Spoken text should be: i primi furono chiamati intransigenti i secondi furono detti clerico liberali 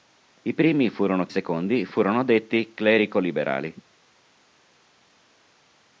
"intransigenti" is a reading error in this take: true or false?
true